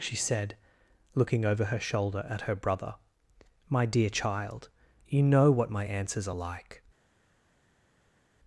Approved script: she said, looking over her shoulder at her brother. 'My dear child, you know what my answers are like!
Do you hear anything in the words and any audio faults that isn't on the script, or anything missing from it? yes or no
no